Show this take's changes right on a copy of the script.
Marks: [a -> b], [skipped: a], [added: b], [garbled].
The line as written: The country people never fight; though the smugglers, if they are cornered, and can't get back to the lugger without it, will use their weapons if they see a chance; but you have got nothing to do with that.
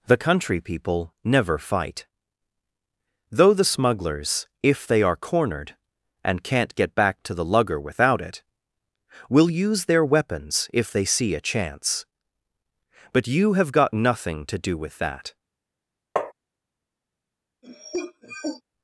The country people never fight; though the smugglers, if they are cornered, and can't get back to the lugger without it, will use their weapons if they see a chance; but you have got nothing to do with that.